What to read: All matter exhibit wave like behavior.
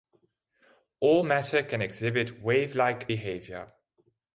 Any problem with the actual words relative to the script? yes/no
yes